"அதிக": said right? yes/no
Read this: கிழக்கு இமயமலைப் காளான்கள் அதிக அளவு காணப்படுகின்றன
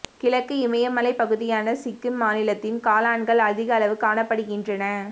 yes